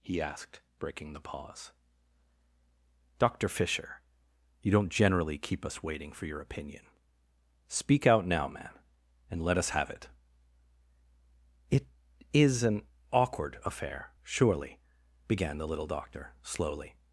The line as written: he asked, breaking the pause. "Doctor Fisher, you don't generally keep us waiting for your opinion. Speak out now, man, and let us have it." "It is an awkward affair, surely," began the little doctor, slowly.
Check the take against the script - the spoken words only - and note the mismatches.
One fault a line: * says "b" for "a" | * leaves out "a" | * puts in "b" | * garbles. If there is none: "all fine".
all fine